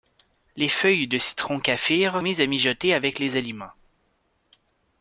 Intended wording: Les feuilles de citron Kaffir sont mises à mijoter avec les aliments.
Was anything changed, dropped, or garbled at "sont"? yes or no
yes